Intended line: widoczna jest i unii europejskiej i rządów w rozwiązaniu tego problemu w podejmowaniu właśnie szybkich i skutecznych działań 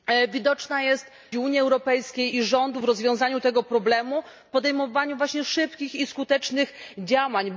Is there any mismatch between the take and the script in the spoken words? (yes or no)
no